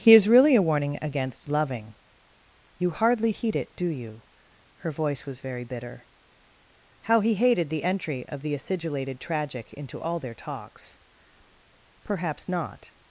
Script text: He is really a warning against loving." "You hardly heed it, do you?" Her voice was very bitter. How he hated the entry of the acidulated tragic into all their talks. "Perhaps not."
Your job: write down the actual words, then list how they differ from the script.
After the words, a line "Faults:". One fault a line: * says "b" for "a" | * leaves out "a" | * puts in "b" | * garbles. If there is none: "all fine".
He is really a warning against loving." "You hardly heed it, do you?" Her voice was very bitter. How he hated the entry of the acidulated tragic into all their talks. "Perhaps not."
Faults:
all fine